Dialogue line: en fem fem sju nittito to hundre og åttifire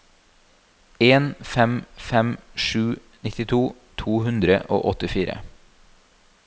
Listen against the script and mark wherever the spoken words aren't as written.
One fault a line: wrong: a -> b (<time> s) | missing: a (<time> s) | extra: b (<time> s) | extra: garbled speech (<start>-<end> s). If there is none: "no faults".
no faults